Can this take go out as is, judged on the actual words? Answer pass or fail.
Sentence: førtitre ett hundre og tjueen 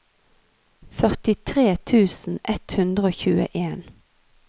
fail